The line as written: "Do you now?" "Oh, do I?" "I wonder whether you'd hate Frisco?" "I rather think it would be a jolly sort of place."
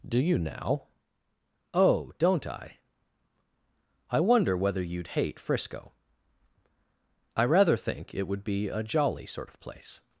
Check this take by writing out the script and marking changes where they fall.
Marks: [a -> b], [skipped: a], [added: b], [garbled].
"Do you now?" "Oh, [do -> don't] I?" "I wonder whether you'd hate Frisco?" "I rather think it would be a jolly sort of place."